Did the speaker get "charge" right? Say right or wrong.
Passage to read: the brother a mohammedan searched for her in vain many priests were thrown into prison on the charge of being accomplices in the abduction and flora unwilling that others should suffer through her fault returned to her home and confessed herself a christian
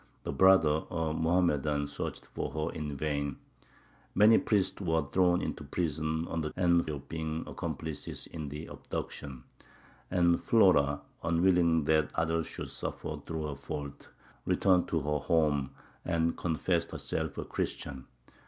wrong